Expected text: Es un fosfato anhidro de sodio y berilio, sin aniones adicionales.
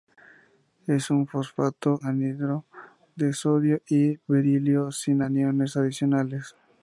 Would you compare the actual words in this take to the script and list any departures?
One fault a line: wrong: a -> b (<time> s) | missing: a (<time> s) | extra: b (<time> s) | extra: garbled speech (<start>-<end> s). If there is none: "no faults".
no faults